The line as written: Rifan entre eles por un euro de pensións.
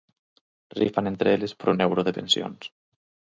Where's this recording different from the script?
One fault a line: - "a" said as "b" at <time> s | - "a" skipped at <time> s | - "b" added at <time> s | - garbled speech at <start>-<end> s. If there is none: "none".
none